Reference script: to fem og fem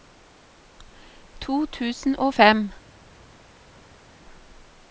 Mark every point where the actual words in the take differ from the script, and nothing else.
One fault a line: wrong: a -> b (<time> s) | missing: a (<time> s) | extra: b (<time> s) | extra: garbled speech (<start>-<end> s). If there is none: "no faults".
wrong: fem -> tusen (1.6 s)